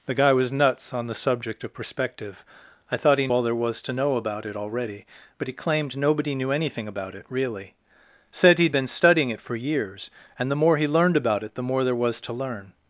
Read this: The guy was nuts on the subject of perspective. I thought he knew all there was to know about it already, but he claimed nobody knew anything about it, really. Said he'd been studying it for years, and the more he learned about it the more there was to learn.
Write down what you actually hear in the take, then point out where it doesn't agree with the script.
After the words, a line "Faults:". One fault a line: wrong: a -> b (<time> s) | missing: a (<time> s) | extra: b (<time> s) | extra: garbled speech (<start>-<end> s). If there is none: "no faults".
The guy was nuts on the subject of perspective. I thought he all there was to know about it already, but he claimed nobody knew anything about it, really. Said he'd been studying it for years, and the more he learned about it the more there was to learn.
Faults:
missing: knew (3.3 s)